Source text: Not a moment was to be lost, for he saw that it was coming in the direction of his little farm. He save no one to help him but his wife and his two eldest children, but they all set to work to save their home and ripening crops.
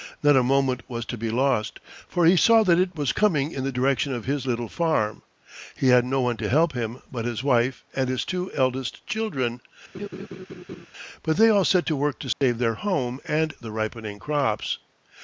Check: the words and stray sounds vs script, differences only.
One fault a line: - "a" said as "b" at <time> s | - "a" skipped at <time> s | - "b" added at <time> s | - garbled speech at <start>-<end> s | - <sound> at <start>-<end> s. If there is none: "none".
- "save" said as "had" at 5.9 s
- laugh at 9.9-10.9 s
- dropout at 12.3-12.4 s
- "the" added at 13.6 s